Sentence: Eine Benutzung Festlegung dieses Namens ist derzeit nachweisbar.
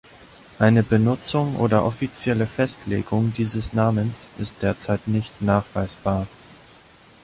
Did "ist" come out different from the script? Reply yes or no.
no